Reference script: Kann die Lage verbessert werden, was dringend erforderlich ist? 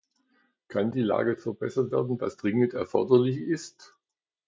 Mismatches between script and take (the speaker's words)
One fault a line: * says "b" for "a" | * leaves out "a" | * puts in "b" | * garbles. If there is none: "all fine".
all fine